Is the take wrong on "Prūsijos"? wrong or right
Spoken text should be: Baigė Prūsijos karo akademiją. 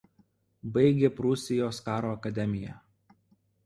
right